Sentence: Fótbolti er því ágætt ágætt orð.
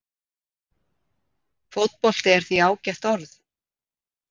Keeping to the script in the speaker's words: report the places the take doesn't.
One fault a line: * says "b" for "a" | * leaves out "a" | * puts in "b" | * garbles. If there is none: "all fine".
* leaves out "ágætt"